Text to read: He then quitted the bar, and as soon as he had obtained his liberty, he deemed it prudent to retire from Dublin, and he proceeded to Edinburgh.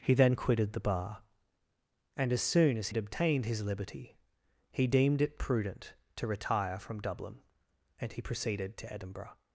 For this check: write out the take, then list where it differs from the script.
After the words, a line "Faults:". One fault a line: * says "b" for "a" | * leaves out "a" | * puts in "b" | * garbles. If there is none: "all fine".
He then quitted the bar, and as soon as had obtained his liberty, he deemed it prudent to retire from Dublin, and he proceeded to Edinburgh.
Faults:
* leaves out "he"